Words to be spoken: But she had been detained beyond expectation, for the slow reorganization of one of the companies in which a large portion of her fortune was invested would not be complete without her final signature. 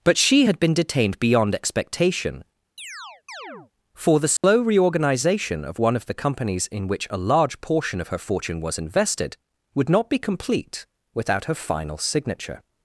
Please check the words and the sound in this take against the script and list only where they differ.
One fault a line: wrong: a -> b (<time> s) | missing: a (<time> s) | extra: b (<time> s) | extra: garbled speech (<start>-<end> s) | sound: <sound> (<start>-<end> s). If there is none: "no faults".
sound: chirp (2.8-3.7 s)
sound: dropout (4.4-4.4 s)